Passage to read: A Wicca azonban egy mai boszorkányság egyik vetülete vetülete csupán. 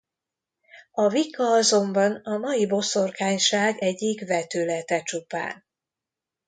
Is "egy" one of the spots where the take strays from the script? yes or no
yes